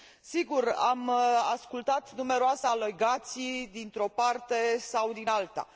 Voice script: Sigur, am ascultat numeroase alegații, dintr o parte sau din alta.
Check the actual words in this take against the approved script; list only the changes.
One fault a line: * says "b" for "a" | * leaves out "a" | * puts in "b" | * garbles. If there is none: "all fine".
all fine